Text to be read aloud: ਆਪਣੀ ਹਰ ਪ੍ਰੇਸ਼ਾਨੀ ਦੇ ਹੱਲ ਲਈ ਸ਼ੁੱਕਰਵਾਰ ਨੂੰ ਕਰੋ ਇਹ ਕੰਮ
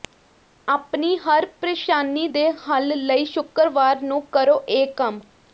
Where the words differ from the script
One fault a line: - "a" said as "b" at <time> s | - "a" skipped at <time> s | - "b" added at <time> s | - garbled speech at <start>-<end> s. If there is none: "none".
none